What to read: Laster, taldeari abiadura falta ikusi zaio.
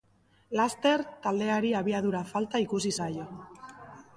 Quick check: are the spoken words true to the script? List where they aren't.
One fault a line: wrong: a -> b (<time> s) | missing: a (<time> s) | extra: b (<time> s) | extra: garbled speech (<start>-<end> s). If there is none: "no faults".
no faults